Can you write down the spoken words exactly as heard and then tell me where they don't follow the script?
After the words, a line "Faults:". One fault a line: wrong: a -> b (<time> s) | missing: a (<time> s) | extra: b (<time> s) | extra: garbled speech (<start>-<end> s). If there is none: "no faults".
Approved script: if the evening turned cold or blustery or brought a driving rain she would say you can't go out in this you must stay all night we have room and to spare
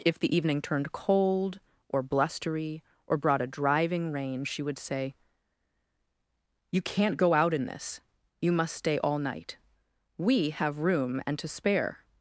if the evening turned cold or blustery or brought a driving rain she would say you can't go out in this you must stay all night we have room and to spare
Faults:
no faults